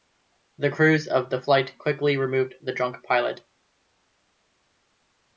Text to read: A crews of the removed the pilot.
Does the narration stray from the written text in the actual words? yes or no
yes